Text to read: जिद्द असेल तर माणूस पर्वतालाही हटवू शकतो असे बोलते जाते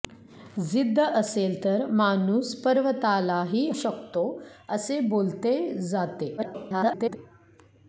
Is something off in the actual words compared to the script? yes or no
yes